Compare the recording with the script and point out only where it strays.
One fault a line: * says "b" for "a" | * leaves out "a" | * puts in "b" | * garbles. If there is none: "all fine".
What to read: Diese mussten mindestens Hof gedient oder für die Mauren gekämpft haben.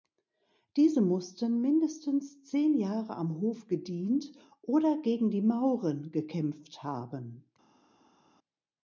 * puts in "zehn Jahre am"
* says "gegen" for "für"